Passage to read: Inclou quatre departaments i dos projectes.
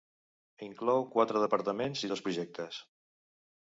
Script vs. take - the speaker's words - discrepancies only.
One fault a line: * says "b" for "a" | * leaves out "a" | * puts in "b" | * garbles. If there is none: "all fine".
all fine